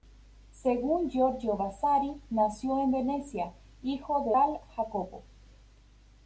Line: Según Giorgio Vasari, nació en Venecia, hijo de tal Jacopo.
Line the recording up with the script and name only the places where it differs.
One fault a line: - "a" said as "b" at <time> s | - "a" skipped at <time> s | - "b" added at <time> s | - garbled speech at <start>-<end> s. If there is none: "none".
none